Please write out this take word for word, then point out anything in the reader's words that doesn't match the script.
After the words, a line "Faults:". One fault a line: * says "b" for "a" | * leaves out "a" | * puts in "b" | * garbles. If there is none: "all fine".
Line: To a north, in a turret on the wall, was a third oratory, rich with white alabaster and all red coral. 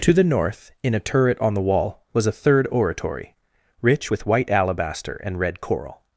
To the north, in a turret on the wall, was a third oratory, rich with white alabaster and red coral.
Faults:
* says "the" for "a"
* leaves out "all"